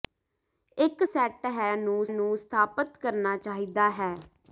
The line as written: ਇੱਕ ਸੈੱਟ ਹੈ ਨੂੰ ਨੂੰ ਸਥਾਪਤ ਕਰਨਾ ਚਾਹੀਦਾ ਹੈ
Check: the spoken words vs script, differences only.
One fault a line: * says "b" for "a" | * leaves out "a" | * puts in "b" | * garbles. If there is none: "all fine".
all fine